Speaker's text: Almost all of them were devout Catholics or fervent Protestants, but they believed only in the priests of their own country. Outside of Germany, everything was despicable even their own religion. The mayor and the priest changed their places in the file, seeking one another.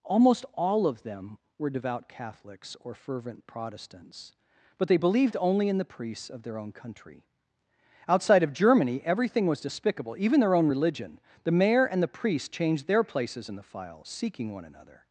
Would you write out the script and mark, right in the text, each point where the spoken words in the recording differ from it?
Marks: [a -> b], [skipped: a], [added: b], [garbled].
Almost all of them were devout Catholics or fervent Protestants, but they believed only in the priests of their own country. Outside of Germany, everything was despicable even their own religion. The mayor and the priest changed their places in the file, seeking one another.